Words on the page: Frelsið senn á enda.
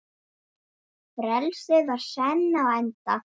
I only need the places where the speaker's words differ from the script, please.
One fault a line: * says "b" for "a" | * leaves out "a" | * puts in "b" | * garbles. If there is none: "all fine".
* puts in "var"